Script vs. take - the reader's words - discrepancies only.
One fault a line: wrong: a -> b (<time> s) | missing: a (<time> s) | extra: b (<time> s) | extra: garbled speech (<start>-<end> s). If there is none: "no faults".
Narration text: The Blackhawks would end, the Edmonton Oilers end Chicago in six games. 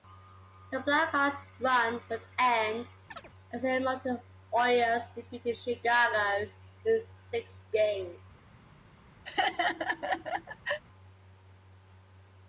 extra: run (1.6 s)
extra: as (3.5 s)
wrong: end -> defeated (5.1 s)